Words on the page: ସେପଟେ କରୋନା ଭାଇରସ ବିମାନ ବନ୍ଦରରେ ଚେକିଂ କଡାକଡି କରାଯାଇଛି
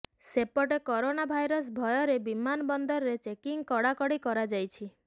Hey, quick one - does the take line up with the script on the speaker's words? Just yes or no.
no